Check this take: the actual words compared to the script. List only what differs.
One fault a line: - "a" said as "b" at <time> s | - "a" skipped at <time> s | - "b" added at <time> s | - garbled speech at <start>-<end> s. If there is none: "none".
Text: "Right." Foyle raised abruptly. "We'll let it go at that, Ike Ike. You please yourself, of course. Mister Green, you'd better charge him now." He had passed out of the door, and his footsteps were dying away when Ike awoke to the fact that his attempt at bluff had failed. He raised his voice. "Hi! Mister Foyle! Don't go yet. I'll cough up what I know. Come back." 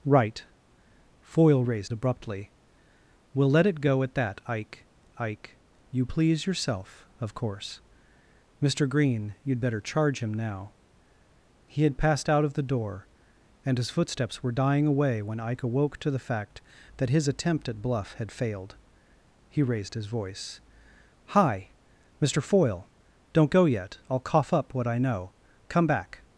none